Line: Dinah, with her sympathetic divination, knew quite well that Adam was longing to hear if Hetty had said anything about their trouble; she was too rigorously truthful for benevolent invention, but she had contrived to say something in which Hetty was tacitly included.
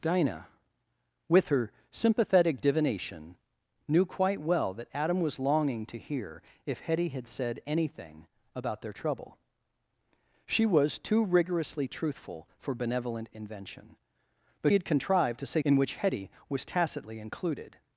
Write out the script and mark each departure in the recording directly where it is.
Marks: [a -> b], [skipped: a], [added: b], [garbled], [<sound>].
Dinah, with her sympathetic divination, knew quite well that Adam was longing to hear if Hetty had said anything about their trouble; she was too rigorously truthful for benevolent invention, but [skipped: she] had contrived to say [skipped: something] in which Hetty was tacitly included.